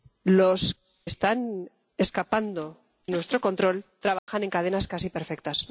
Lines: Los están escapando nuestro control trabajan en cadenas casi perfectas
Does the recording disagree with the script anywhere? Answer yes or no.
no